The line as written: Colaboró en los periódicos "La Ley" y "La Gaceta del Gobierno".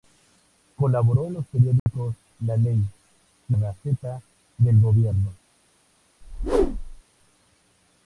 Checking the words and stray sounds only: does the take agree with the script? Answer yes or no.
no